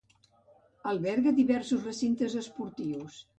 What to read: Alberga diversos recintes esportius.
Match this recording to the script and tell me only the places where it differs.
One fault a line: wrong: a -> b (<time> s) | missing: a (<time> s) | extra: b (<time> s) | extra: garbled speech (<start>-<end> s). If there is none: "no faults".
no faults